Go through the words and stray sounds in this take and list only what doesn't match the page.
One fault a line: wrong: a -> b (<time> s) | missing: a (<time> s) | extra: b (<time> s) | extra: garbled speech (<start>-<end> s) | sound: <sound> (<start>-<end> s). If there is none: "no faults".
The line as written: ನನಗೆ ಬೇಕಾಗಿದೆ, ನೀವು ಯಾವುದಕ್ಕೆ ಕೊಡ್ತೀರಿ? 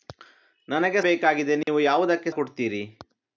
sound: dropout (1.6-1.7 s)